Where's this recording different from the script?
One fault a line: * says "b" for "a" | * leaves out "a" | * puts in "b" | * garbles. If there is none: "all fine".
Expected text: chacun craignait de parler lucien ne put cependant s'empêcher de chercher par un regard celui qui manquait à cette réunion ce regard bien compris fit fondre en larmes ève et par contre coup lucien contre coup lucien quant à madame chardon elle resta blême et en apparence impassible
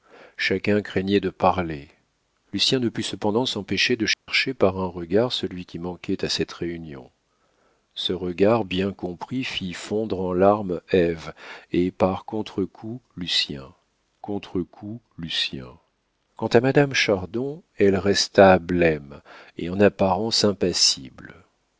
all fine